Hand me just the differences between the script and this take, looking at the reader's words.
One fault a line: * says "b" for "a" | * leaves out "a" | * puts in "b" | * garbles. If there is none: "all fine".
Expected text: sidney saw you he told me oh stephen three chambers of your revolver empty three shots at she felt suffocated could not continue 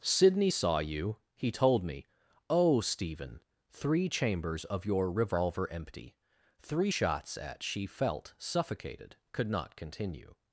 all fine